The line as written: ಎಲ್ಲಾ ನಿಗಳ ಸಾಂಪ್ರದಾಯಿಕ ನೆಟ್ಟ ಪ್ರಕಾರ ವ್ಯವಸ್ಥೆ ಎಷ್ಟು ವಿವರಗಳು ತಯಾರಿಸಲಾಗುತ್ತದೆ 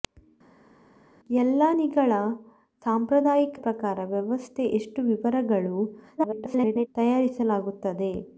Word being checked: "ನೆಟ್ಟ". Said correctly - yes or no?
no